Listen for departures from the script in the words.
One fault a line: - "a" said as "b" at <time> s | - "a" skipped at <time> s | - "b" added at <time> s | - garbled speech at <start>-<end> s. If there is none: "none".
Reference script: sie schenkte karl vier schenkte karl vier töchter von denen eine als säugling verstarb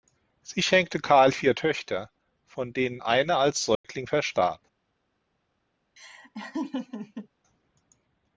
- "schenkte karl vier" skipped at 1.6 s